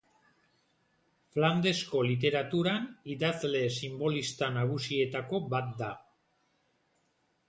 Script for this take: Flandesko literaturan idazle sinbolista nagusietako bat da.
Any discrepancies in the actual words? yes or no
no